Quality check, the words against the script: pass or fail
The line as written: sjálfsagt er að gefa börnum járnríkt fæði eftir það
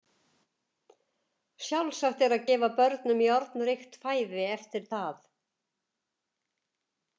pass